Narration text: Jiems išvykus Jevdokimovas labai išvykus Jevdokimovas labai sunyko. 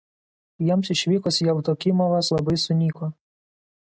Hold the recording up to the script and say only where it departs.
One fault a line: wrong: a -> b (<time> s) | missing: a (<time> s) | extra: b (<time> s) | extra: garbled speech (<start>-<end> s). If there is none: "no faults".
missing: išvykus Jevdokimovas labai (2.6 s)